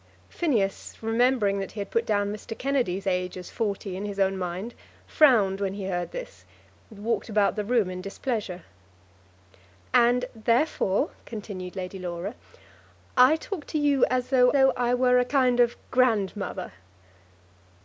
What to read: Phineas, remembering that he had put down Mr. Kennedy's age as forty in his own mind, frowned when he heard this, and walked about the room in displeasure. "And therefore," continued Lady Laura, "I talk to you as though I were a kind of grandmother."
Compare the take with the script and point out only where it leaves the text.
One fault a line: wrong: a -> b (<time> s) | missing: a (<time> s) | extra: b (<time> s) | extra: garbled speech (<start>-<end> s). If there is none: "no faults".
extra: though (14.5 s)